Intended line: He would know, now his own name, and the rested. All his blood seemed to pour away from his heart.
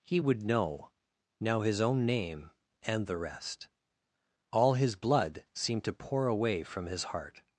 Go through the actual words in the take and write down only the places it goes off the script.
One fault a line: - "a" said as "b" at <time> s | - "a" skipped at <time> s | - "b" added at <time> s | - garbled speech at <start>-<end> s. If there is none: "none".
- "rested" said as "rest" at 3.2 s